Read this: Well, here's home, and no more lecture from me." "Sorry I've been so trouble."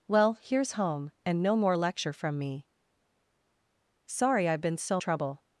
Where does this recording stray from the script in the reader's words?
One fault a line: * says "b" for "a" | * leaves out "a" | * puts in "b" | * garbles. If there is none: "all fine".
all fine